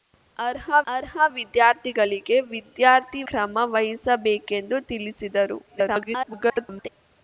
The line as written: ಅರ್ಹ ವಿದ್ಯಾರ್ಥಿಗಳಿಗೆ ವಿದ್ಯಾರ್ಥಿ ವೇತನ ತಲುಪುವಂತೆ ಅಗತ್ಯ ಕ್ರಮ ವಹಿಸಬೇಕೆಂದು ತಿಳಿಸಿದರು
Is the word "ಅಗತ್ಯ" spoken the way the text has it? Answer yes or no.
no